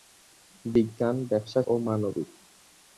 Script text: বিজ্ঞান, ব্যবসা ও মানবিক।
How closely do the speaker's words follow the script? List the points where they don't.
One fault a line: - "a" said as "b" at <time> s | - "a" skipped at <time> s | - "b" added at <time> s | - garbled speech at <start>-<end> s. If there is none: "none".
none